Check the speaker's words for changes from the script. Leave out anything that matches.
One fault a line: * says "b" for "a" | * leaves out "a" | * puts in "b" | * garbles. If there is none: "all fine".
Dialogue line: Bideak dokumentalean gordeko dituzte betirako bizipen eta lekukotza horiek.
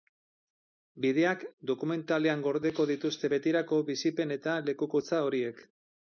all fine